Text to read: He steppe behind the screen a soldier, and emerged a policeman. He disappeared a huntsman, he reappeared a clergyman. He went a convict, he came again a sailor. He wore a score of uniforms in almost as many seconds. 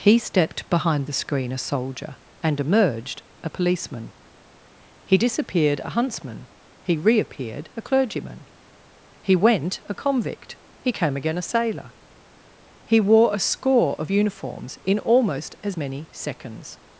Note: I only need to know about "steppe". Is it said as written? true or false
false